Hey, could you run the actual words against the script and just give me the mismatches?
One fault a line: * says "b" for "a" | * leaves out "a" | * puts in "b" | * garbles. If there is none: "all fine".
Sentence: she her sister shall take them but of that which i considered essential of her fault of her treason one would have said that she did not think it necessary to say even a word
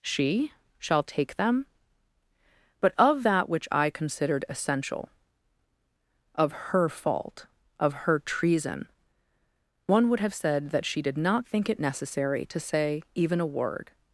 * leaves out "her sister"